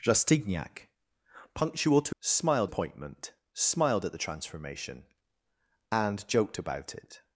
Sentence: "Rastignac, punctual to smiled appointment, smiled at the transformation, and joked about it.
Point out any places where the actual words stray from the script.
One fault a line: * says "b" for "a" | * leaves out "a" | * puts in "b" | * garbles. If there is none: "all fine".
all fine